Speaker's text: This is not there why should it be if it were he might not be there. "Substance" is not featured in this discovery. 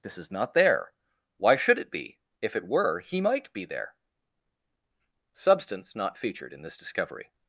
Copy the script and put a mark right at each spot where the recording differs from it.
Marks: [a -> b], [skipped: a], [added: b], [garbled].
This is not there why should it be if it were he might [skipped: not] be there. "Substance" [skipped: is] not featured in this discovery.